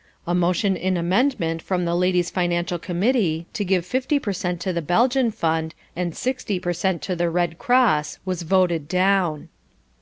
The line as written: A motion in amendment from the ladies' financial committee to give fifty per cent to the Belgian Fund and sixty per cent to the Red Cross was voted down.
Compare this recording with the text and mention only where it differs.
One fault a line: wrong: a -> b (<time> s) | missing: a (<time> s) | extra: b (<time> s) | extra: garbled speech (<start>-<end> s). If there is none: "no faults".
no faults